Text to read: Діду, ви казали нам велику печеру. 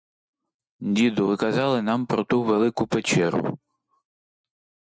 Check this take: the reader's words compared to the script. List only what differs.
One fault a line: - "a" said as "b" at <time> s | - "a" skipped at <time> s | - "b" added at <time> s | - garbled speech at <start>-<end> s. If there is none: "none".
- "про ту" added at 2.0 s